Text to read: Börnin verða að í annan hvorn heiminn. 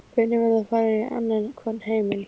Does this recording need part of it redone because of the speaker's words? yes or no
yes